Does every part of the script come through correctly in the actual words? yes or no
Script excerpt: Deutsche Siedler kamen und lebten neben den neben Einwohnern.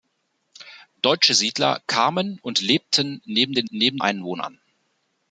yes